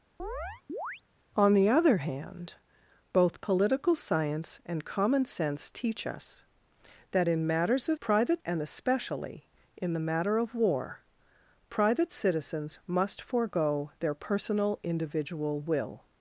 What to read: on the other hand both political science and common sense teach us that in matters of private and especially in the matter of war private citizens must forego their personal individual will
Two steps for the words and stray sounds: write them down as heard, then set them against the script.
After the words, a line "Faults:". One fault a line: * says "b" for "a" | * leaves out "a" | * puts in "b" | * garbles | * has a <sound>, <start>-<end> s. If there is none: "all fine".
on the other hand both political science and common sense teach us that in matters of private and especially in the matter of war private citizens must forego their personal individual will
Faults:
* has a chirp, 0.2-1.0 s